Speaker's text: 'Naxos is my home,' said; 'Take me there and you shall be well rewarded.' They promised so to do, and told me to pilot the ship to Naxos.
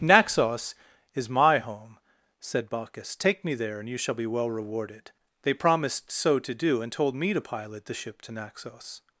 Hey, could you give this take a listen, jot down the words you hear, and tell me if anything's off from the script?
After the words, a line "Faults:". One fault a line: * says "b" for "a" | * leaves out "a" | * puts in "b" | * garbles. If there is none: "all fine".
'Naxos is my home,' said Bacchus; 'take me there and you shall be well rewarded.' They promised so to do, and told me to pilot the ship to Naxos.
Faults:
* puts in "Bacchus"